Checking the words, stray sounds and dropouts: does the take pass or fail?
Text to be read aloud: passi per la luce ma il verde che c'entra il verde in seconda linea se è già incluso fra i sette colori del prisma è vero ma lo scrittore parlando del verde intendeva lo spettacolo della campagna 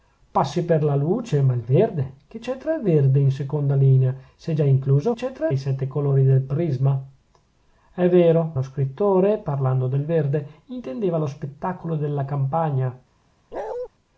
fail